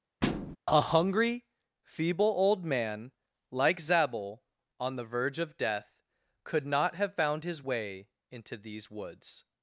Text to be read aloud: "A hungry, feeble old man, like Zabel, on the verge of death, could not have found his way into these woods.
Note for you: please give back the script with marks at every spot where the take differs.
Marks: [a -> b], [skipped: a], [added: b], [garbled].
"A hungry, feeble old man, like Zabel, on the verge of death, could not have found his way into these woods.